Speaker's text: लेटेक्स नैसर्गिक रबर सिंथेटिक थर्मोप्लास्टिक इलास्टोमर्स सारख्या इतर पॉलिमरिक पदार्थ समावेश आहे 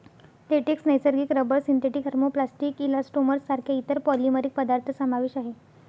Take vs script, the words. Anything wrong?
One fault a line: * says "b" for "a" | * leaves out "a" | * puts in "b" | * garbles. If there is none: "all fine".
all fine